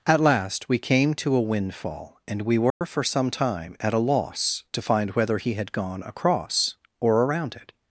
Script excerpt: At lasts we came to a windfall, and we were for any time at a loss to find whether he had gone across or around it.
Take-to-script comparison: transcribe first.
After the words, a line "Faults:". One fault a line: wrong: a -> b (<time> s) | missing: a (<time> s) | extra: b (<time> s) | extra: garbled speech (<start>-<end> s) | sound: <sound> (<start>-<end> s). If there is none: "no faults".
At last we came to a windfall, and we were for some time at a loss to find whether he had gone across or around it.
Faults:
wrong: lasts -> last (0.2 s)
sound: dropout (2.7-2.8 s)
wrong: any -> some (3.0 s)